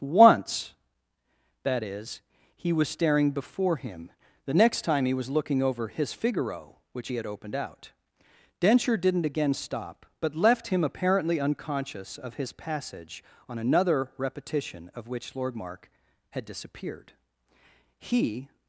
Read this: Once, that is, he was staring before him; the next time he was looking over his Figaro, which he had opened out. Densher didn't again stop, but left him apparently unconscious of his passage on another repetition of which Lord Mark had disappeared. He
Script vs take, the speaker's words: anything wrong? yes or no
no